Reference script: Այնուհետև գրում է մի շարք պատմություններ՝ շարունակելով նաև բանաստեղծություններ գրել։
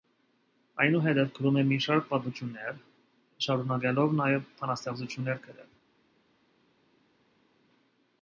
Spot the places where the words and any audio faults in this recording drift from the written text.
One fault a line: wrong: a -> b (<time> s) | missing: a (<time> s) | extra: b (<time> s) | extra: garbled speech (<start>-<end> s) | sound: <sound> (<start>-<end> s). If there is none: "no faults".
no faults